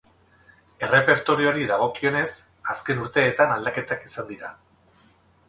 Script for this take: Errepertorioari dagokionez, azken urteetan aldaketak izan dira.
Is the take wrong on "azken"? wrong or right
right